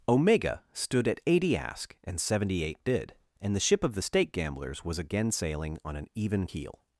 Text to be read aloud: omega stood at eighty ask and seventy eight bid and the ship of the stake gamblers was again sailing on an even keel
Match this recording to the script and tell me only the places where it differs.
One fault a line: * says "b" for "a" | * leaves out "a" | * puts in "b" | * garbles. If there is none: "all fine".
all fine